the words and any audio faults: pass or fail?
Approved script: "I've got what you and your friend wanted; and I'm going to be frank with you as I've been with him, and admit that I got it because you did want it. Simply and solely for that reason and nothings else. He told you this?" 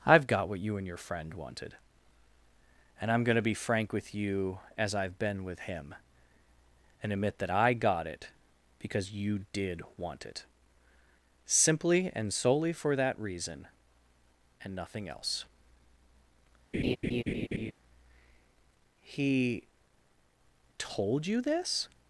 fail